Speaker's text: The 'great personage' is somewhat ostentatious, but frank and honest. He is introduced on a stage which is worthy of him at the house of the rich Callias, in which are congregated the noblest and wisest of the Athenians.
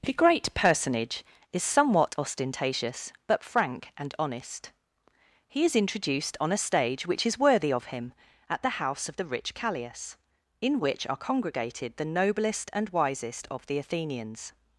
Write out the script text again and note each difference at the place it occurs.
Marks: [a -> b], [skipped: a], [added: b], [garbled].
The 'great personage' is somewhat ostentatious, but frank and honest. He is introduced on a stage which is worthy of him at the house of the rich Callias, in which are congregated the noblest and wisest of the Athenians.